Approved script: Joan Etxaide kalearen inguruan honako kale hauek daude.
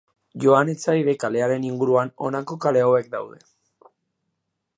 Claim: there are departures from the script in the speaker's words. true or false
false